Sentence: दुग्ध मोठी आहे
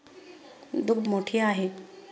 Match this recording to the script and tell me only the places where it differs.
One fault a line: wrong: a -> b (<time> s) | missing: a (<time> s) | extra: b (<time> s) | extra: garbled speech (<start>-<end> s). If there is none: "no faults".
no faults